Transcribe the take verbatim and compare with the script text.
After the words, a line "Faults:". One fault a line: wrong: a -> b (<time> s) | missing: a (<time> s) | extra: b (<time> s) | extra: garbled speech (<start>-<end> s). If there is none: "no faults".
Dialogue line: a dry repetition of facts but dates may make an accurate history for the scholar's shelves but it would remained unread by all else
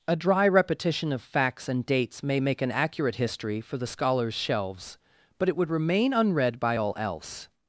a dry repetition of facts and dates may make an accurate history for the scholar's shelves but it would remain unread by all else
Faults:
wrong: but -> and (1.7 s)
wrong: remained -> remain (5.7 s)